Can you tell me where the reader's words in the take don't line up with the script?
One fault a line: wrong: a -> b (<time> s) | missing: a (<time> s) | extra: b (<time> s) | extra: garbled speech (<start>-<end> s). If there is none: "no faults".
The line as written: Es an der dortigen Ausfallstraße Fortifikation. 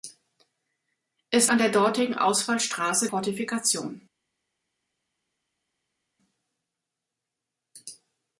no faults